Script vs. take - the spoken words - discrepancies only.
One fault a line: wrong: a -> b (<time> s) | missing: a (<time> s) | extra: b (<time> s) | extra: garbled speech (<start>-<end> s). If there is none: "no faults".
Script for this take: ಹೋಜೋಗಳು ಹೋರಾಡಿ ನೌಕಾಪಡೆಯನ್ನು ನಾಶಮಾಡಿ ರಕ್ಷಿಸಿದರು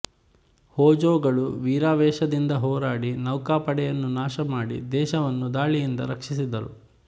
extra: ವೀರಾವೇಶದಿಂದ (1.6 s)
extra: ದೇಶವನ್ನು ದಾಳಿಯಿಂದ (4.9 s)